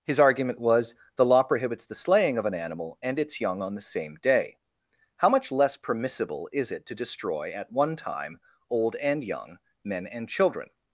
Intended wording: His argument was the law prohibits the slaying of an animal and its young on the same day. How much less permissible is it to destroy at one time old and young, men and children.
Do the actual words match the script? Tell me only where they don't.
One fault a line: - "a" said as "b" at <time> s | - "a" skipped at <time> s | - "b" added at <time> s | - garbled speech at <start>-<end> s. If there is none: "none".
none